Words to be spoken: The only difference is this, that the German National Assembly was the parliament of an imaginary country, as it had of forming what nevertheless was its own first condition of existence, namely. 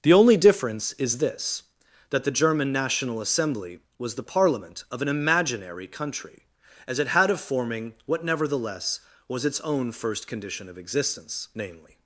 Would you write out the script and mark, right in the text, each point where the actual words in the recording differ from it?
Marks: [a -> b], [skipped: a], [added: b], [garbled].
The only difference is this, that the German National Assembly was the parliament of an imaginary country, as it had of forming what nevertheless was its own first condition of existence, namely.